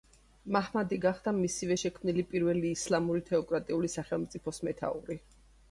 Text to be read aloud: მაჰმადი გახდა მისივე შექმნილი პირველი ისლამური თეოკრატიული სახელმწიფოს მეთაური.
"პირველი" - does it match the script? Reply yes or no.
yes